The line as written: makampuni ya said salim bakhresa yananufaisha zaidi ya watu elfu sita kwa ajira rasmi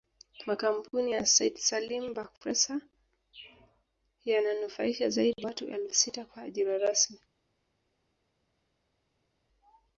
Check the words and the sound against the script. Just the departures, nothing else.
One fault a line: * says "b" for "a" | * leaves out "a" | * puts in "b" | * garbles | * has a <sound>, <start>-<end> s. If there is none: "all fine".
* leaves out "ya"